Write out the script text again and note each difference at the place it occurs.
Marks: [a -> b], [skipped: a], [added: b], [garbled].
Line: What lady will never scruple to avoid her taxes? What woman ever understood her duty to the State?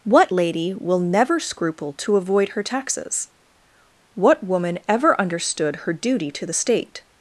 What lady will never scruple to avoid her taxes? What woman ever understood her duty to the State?